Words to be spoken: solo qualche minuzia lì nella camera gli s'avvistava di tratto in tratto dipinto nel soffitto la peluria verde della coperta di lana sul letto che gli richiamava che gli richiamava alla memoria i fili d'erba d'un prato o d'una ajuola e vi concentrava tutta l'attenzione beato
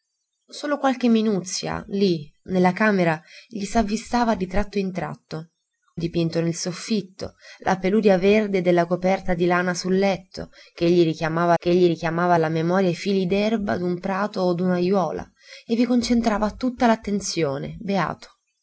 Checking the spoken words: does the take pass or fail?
pass